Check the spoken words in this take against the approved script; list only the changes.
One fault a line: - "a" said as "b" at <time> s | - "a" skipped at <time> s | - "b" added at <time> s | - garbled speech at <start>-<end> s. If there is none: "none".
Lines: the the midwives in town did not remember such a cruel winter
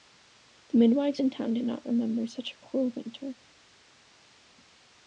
- "the" skipped at 0.8 s